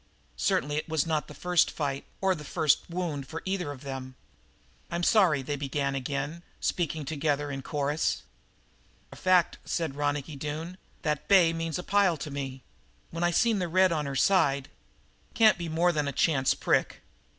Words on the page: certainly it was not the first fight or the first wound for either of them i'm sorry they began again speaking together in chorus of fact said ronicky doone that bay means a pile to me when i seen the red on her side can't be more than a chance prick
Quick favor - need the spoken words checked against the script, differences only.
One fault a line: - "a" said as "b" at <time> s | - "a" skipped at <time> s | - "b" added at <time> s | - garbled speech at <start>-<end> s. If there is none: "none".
none